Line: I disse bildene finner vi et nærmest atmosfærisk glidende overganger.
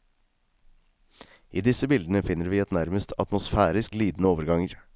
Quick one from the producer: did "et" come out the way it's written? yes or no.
yes